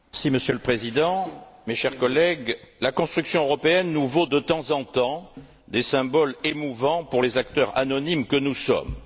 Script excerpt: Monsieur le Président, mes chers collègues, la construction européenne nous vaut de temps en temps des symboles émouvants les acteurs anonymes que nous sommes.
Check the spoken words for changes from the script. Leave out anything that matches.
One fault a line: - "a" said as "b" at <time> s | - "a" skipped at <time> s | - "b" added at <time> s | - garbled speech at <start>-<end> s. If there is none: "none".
- "pour" added at 7.0 s